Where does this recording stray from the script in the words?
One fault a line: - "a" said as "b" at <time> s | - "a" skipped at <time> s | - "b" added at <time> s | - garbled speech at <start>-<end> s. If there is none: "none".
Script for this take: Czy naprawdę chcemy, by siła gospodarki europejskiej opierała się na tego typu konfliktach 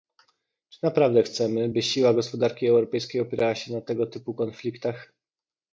none